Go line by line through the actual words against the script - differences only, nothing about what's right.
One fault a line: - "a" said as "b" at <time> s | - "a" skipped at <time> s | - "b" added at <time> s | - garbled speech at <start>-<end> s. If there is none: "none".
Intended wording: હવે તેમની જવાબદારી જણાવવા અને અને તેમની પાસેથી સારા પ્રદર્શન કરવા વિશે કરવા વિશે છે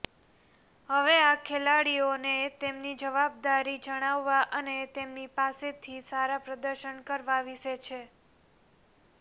- "આ ખેલાડીઓને" added at 1.2 s
- "અને" skipped at 4.8 s
- "કરવા વિશે" skipped at 7.8 s